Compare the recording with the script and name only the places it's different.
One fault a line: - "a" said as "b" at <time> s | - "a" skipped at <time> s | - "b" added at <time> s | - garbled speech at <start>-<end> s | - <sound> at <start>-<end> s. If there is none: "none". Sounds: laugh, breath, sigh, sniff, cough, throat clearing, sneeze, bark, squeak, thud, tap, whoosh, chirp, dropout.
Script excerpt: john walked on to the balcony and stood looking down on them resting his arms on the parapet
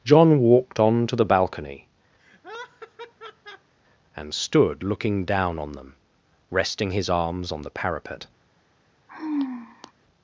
- laugh at 2.2-3.7 s
- sigh at 9.1-9.9 s